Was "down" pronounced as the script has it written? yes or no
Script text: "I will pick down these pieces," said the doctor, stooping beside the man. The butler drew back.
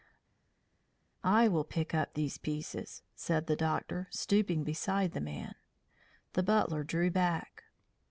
no